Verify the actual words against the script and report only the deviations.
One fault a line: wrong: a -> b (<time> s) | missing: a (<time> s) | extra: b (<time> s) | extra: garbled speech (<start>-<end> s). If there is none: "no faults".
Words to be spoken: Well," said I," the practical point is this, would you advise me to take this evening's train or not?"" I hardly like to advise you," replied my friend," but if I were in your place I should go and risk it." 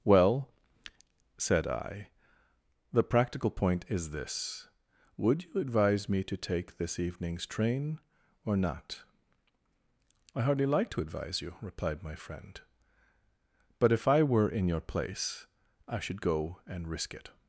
no faults